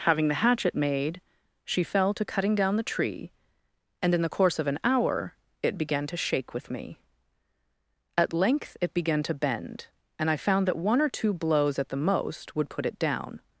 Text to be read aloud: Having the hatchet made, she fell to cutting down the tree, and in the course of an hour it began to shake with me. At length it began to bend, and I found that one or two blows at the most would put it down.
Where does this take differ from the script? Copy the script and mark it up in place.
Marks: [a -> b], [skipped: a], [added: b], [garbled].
Having the hatchet made, she fell to cutting down the tree, and in the course of an hour it began to shake with me. At length it began to bend, and I found that one or two blows at the most would put it down.